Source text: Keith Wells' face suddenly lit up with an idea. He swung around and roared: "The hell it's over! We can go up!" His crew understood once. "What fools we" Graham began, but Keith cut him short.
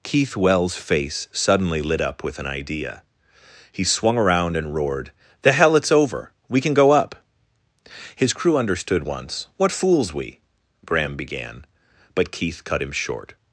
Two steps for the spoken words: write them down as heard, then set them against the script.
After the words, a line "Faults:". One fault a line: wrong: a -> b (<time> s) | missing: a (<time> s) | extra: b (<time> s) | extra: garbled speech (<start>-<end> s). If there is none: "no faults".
Keith Wells' face suddenly lit up with an idea. He swung around and roared: "The hell it's over! We can go up!" His crew understood once. "What fools we" Graham began, but Keith cut him short.
Faults:
no faults